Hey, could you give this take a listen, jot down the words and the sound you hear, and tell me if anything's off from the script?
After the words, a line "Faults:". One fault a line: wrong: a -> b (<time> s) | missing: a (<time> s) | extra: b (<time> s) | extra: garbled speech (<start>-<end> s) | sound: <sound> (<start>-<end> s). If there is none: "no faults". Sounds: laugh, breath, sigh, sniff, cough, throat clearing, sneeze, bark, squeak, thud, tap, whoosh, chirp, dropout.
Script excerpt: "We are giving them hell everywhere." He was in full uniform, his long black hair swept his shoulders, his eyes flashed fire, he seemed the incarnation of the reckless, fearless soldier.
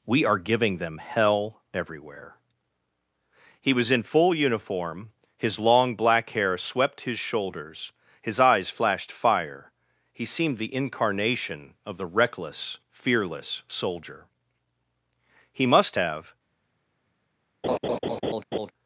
"We are giving them hell everywhere." He was in full uniform, his long black hair swept his shoulders, his eyes flashed fire, he seemed the incarnation of the reckless, fearless soldier. He must have
Faults:
extra: He must have (15.5 s)
sound: laugh (17.6-18.7 s)